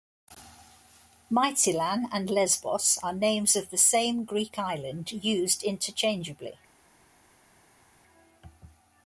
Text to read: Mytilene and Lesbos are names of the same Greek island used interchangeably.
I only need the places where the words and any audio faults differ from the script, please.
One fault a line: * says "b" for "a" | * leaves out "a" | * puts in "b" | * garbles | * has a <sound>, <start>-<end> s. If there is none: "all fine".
all fine